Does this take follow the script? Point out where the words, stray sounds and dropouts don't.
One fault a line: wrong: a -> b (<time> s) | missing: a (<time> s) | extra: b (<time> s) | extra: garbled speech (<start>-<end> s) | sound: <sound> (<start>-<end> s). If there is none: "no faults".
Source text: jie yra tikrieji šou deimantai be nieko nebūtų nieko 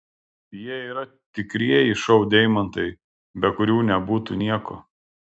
wrong: nieko -> kurių (3.6 s)